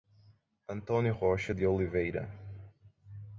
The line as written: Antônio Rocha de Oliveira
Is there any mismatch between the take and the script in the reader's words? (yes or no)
no